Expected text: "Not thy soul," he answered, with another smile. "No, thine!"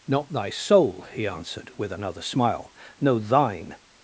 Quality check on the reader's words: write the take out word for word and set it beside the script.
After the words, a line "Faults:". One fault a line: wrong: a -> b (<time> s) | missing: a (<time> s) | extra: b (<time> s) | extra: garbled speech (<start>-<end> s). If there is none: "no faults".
"Not thy soul," he answered, with another smile. "No, thine!"
Faults:
no faults